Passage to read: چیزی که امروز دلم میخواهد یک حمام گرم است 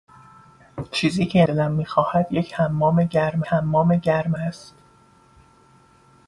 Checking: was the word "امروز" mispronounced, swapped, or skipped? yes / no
yes